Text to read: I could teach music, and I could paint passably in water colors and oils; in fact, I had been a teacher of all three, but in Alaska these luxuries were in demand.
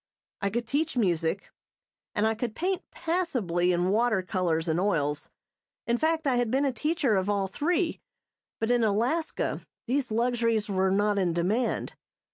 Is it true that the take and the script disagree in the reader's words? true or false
true